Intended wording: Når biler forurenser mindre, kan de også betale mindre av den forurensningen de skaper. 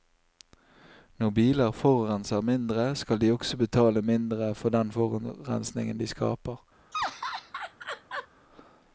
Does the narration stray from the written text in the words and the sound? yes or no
yes